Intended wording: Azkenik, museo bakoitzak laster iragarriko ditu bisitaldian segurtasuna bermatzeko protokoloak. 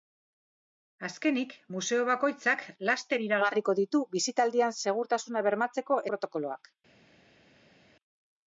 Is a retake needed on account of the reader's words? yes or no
no